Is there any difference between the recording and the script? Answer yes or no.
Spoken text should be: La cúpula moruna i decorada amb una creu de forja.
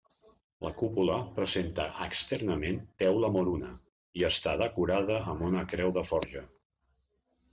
yes